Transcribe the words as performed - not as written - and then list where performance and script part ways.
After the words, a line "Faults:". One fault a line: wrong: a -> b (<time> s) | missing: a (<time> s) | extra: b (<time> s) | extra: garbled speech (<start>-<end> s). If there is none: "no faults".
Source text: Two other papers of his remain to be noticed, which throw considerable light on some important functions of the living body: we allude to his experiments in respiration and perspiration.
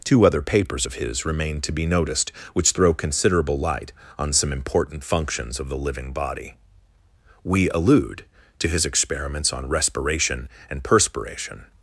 Two other papers of his remain to be noticed, which throw considerable light on some important functions of the living body: we allude to his experiments on respiration and perspiration.
Faults:
wrong: in -> on (9.5 s)